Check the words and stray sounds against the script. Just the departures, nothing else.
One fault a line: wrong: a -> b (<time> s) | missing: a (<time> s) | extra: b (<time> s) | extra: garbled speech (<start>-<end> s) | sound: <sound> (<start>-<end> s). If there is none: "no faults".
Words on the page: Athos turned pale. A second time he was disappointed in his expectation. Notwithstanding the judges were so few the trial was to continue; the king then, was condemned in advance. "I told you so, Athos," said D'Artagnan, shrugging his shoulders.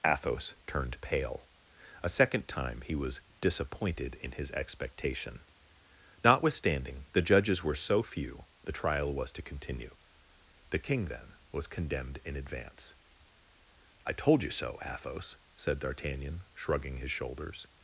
no faults